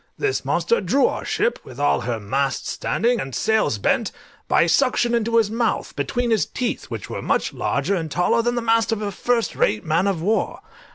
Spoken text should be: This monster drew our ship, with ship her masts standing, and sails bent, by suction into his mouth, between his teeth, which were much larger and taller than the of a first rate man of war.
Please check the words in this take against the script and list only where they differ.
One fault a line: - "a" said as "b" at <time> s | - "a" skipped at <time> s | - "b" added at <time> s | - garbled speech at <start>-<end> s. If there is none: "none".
- "ship" said as "all" at 1.8 s
- "mast" added at 8.6 s